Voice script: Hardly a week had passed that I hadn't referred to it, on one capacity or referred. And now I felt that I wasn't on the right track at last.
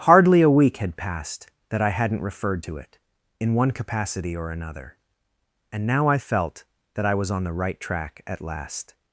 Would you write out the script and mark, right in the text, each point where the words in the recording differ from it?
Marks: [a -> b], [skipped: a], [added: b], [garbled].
Hardly a week had passed that I hadn't referred to it, [on -> in] one capacity or [referred. -> another] And now I felt that I [wasn't -> was] on the right track at last.